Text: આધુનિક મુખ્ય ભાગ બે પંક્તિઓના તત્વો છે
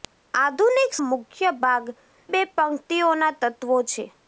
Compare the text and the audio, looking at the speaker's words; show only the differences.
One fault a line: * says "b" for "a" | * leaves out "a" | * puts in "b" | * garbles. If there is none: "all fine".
all fine